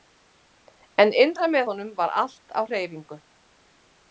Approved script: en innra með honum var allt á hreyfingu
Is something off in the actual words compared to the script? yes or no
no